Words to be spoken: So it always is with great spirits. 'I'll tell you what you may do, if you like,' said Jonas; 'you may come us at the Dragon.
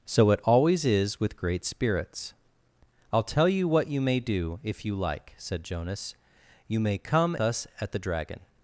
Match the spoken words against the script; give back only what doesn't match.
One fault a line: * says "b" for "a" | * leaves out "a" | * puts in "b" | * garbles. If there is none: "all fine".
all fine